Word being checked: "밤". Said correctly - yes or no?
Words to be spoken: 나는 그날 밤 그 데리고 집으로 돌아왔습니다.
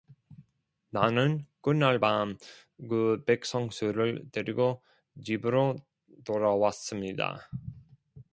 yes